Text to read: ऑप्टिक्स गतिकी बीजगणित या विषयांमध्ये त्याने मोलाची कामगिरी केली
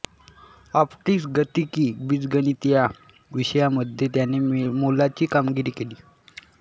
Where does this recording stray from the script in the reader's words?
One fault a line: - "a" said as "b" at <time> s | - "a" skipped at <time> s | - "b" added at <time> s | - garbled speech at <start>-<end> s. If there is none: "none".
none